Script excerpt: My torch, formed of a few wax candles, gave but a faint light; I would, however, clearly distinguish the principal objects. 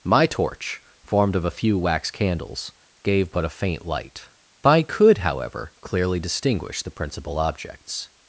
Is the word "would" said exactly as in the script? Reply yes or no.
no